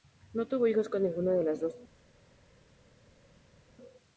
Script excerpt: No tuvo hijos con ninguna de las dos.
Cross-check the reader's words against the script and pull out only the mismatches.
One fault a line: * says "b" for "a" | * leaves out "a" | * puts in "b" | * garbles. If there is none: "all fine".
all fine